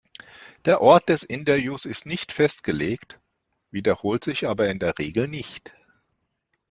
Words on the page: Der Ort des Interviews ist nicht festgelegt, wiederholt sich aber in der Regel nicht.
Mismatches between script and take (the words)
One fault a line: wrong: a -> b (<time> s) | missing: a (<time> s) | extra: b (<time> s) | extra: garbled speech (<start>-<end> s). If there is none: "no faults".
no faults